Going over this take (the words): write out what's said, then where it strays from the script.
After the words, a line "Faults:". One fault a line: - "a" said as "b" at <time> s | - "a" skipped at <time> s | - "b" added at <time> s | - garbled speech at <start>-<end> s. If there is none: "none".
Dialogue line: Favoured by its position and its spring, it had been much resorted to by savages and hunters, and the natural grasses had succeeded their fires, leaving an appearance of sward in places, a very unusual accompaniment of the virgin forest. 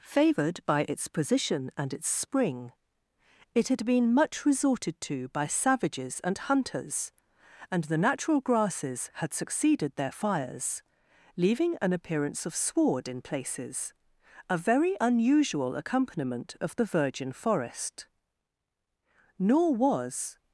Favoured by its position and its spring, it had been much resorted to by savages and hunters, and the natural grasses had succeeded their fires, leaving an appearance of sward in places, a very unusual accompaniment of the virgin forest. Nor was
Faults:
- "Nor was" added at 19.4 s